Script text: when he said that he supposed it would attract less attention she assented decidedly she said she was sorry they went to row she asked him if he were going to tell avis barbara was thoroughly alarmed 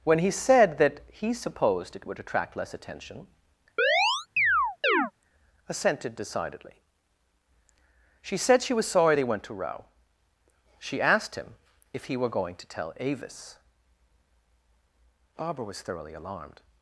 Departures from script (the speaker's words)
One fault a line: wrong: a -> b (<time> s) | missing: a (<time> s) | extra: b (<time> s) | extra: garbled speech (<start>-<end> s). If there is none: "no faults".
missing: she (3.3 s)